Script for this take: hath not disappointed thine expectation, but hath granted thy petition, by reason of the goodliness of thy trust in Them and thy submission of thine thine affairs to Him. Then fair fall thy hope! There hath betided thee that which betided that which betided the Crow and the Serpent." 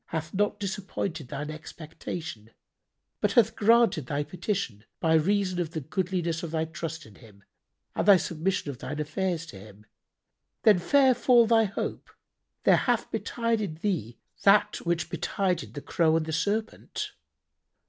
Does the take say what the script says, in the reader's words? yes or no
no